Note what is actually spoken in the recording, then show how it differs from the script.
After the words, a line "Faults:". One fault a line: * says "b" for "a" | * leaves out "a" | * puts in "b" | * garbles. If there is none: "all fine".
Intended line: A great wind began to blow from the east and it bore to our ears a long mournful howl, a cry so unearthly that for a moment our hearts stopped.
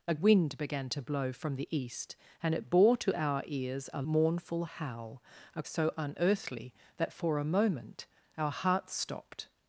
A wind began to blow from the east and it bore to our ears a mournful howl, a so unearthly that for a moment our hearts stopped.
Faults:
* leaves out "great"
* leaves out "long"
* leaves out "cry"